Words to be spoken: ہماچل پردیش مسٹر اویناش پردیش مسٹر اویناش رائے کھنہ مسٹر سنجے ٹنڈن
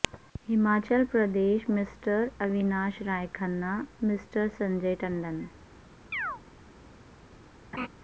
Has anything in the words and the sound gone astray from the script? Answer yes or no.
yes